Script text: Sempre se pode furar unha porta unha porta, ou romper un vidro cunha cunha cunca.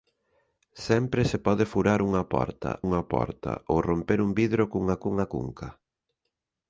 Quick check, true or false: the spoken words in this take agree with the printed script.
true